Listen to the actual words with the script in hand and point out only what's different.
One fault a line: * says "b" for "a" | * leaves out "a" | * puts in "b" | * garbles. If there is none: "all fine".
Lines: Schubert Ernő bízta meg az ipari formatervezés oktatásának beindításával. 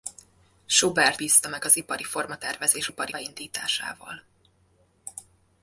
* leaves out "Ernő"
* says "ipari" for "oktatásának"